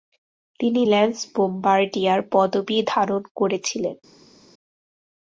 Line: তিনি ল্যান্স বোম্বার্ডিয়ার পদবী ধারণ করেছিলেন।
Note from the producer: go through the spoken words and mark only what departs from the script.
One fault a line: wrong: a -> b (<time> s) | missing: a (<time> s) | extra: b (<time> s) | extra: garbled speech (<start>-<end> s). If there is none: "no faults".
no faults